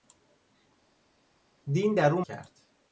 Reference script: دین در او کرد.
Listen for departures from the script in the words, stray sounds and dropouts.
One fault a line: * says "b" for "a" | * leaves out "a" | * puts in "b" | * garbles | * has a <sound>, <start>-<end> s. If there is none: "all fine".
all fine